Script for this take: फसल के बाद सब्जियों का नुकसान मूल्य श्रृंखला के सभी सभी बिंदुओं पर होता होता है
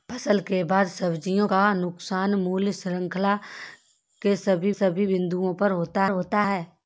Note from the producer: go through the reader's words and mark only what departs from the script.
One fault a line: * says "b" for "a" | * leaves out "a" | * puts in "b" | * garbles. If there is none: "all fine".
all fine